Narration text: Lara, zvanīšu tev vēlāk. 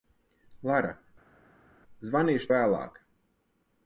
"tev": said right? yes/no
no